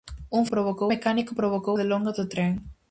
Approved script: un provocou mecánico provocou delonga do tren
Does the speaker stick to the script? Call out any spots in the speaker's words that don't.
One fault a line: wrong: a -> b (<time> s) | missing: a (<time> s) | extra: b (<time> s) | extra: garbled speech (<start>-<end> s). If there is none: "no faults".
no faults